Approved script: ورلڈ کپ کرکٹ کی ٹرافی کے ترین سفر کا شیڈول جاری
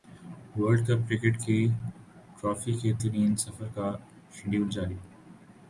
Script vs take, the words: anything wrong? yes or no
no